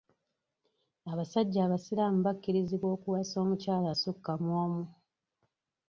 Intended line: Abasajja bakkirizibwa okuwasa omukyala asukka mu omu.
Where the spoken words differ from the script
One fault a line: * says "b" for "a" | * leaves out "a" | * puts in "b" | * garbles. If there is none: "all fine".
* puts in "abasiraamu"